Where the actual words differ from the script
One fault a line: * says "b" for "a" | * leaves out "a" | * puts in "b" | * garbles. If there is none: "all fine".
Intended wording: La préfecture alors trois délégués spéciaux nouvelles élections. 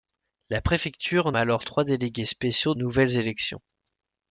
all fine